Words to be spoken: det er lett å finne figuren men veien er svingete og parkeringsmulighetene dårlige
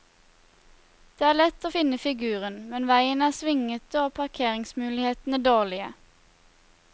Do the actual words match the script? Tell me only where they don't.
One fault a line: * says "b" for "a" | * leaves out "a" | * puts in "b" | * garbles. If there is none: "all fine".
all fine